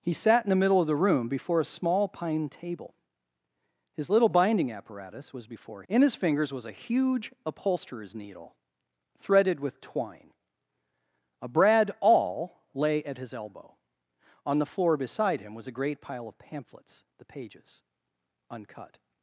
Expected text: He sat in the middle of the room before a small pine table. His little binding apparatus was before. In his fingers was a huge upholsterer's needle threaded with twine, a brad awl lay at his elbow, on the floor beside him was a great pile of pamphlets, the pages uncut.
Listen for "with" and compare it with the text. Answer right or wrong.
right